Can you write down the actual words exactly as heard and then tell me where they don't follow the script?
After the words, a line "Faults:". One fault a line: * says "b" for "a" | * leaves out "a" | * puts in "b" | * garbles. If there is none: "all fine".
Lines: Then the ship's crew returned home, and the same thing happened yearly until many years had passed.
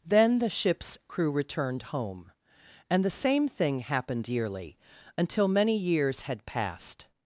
Then the ship's crew returned home, and the same thing happened yearly until many years had passed.
Faults:
all fine